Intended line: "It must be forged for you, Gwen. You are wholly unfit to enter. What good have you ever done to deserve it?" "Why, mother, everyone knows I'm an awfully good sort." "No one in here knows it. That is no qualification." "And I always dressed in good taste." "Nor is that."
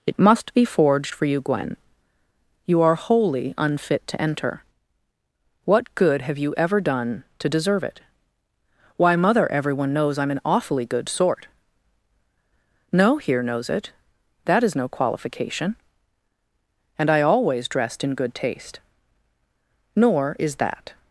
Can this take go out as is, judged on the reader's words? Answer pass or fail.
fail